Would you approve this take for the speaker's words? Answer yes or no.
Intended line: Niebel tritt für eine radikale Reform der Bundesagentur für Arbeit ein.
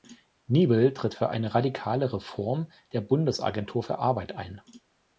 yes